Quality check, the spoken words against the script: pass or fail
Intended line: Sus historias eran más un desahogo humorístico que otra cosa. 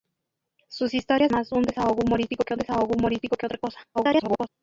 fail